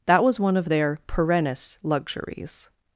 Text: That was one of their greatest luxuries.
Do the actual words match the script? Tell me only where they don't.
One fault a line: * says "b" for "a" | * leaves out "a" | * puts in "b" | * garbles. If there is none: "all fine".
* says "perennis" for "greatest"